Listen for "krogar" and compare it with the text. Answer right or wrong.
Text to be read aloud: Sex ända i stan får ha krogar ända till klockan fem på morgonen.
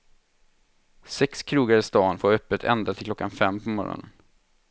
wrong